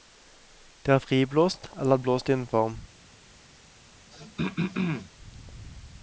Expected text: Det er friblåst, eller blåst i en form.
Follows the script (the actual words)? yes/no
yes